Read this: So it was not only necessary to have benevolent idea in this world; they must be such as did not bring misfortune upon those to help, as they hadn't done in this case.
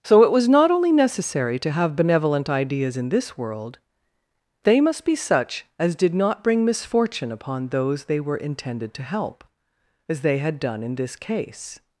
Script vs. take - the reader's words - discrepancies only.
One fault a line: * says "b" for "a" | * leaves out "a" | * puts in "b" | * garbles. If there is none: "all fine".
* says "ideas" for "idea"
* puts in "they were intended"
* says "had" for "hadn't"